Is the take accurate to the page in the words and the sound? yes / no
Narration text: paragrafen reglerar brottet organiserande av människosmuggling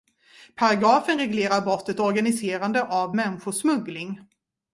yes